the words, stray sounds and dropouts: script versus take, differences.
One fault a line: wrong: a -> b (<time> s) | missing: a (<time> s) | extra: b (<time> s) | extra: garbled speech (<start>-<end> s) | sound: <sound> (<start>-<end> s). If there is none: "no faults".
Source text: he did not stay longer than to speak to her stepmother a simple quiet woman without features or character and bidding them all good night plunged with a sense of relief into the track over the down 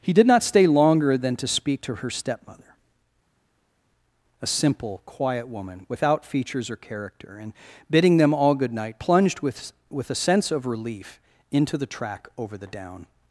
extra: with (9.9 s)